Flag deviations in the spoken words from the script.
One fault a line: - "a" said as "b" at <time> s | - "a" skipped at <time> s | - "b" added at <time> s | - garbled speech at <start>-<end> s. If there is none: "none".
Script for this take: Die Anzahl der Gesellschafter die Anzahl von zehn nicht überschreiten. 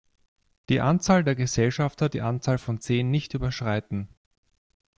none